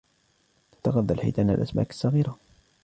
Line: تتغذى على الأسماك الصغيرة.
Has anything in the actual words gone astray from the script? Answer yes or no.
yes